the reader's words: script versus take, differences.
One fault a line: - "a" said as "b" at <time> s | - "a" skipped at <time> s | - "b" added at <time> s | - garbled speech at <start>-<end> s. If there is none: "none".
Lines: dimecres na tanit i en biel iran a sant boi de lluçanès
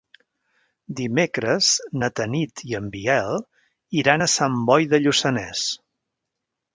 none